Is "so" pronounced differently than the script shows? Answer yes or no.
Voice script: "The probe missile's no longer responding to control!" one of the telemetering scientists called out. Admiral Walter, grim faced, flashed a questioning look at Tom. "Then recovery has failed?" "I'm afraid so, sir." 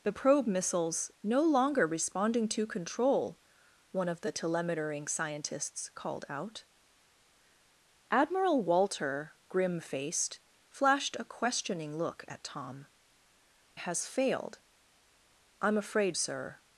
yes